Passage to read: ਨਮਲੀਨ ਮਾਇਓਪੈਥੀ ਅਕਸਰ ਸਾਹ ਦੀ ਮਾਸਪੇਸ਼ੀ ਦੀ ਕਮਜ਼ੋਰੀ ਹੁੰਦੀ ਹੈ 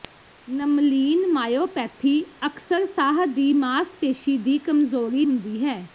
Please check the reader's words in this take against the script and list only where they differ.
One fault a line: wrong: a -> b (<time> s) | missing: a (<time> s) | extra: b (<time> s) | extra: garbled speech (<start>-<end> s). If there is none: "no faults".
no faults